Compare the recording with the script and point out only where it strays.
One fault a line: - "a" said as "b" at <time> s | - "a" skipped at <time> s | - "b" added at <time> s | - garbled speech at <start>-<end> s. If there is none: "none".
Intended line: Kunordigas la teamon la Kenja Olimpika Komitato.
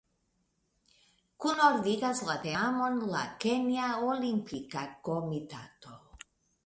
none